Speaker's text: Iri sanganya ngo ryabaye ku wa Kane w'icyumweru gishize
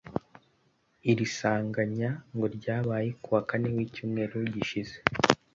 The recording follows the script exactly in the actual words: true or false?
true